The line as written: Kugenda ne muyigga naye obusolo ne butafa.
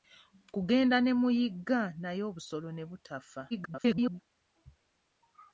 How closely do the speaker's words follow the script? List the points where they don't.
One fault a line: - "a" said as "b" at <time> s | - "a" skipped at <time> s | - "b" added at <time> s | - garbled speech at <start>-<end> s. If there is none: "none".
- garbled speech at 3.5-4.2 s